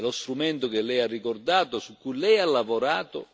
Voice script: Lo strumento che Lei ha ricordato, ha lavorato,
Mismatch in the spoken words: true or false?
true